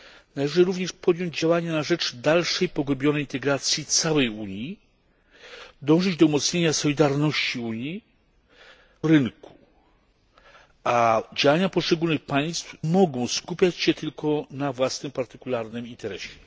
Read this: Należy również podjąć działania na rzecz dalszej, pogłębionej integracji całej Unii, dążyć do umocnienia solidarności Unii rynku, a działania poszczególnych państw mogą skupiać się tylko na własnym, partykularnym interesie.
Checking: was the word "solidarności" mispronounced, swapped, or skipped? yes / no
no